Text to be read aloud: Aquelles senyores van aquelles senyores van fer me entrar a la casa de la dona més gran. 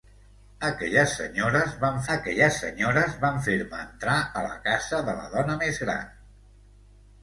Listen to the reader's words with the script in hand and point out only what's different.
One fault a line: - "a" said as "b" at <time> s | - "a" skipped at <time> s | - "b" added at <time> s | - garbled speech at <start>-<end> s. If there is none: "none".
none